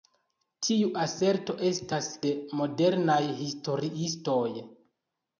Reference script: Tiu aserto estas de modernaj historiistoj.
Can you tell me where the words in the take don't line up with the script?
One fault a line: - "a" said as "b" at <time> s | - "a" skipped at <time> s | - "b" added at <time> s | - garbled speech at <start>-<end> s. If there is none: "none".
none